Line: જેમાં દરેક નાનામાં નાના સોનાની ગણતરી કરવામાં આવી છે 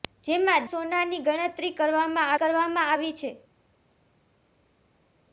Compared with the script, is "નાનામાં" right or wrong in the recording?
wrong